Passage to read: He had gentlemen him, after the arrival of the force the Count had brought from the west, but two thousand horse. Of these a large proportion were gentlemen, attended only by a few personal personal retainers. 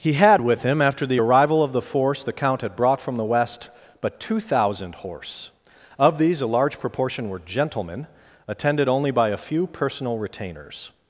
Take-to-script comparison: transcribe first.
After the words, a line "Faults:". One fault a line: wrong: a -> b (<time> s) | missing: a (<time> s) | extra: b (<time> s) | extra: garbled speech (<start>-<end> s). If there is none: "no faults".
He had with him, after the arrival of the force the Count had brought from the west, but two thousand horse. Of these a large proportion were gentlemen, attended only by a few personal retainers.
Faults:
wrong: gentlemen -> with (0.4 s)
missing: personal (10.2 s)